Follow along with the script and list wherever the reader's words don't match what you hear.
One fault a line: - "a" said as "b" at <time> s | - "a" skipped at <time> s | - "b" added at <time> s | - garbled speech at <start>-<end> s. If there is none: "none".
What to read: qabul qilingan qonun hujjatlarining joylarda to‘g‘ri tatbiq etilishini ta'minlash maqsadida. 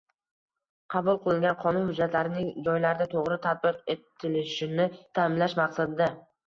none